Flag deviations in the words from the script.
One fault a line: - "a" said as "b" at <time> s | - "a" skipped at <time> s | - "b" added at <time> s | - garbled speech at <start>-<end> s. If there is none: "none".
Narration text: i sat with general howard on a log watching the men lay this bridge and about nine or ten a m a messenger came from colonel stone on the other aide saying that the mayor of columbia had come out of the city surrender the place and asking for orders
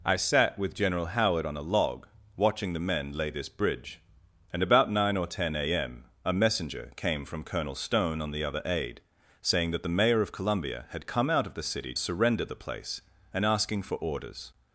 none